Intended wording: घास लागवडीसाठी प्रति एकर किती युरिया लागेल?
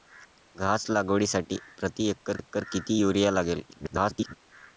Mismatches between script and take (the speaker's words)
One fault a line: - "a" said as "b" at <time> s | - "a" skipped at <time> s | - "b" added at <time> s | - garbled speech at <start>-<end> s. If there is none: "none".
- "एकर" added at 2.4 s
- garbled speech at 3.7-4.3 s